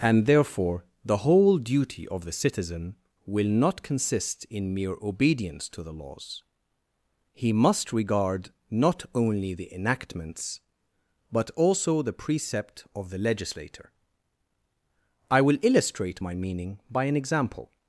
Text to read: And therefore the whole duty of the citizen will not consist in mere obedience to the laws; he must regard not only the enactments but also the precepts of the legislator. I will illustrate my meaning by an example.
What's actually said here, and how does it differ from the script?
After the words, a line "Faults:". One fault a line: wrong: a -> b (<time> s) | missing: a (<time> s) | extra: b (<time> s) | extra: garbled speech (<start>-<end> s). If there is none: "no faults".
And therefore the whole duty of the citizen will not consist in mere obedience to the laws; he must regard not only the enactments but also the precept of the legislator. I will illustrate my meaning by an example.
Faults:
wrong: precepts -> precept (12.1 s)